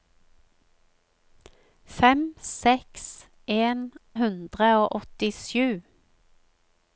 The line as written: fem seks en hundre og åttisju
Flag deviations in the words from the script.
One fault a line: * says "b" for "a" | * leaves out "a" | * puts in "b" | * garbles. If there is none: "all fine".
all fine